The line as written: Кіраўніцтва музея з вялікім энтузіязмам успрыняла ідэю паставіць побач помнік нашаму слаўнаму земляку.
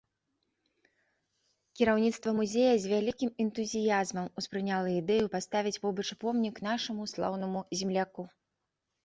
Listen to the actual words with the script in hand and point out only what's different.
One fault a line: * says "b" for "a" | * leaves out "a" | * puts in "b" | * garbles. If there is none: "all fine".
all fine